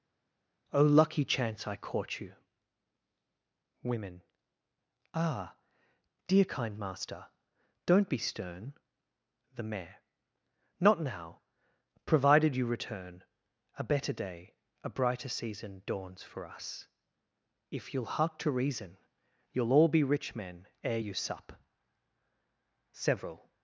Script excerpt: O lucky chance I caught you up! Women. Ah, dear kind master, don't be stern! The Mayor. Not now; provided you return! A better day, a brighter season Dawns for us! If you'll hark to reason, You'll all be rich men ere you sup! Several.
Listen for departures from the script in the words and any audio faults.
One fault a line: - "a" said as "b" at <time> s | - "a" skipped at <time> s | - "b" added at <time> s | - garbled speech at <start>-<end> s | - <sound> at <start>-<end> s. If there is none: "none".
- "up" skipped at 2.3 s